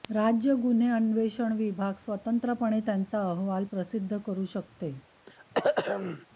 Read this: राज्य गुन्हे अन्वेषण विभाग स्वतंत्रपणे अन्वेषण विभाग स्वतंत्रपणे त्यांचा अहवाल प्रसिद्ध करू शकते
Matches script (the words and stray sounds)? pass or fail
fail